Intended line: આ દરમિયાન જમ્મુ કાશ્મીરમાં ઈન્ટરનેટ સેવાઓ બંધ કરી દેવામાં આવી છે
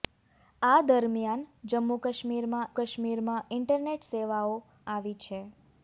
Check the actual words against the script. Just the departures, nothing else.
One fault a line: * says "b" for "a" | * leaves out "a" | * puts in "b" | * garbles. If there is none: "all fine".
* puts in "કાશ્મીરમાં"
* leaves out "બંધ કરી દેવામાં"